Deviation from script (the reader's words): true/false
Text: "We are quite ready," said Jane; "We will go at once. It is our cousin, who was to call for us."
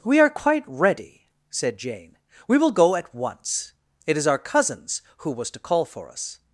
true